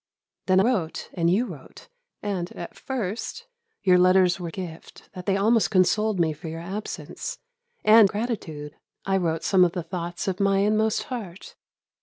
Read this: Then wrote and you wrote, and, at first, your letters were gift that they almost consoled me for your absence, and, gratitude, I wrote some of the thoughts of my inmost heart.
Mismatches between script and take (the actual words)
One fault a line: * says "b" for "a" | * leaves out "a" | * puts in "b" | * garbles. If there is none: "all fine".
all fine